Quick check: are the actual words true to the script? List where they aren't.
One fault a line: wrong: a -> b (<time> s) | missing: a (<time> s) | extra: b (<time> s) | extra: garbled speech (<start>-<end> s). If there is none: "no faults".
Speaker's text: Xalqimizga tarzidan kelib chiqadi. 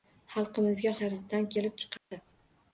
no faults